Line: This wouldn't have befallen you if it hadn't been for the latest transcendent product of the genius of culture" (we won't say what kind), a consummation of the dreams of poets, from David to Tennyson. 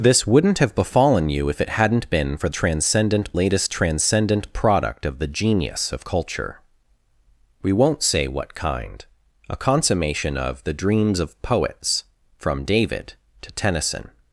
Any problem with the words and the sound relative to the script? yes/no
yes